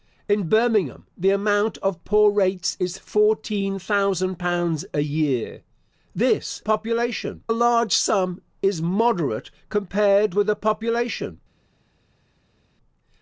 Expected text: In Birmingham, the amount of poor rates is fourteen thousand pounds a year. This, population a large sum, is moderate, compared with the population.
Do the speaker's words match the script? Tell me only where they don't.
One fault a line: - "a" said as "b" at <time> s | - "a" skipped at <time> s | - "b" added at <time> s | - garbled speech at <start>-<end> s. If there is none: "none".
none